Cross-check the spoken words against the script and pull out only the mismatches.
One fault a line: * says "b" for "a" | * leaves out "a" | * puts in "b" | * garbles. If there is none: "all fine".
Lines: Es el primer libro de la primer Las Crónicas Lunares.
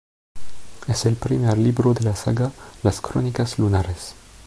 * says "saga" for "primer"